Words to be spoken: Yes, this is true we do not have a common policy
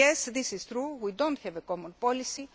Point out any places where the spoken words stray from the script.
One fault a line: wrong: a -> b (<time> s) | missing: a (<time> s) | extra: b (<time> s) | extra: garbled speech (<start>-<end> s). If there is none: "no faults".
no faults